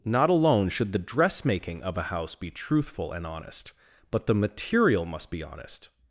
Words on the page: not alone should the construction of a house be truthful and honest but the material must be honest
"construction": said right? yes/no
no